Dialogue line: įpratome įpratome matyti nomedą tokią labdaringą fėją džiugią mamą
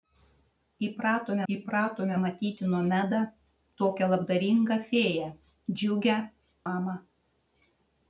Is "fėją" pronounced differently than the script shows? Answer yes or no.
no